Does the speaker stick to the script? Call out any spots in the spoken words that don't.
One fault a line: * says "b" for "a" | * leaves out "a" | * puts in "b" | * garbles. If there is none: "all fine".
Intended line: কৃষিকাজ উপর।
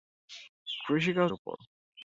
all fine